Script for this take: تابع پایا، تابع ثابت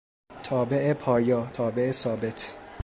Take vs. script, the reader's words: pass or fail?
pass